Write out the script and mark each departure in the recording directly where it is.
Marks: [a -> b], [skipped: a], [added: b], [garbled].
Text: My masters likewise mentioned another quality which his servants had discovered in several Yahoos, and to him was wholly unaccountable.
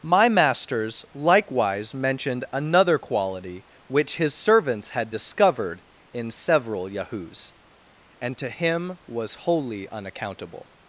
My masters likewise mentioned another quality which his servants had discovered in several Yahoos, and to him was wholly unaccountable.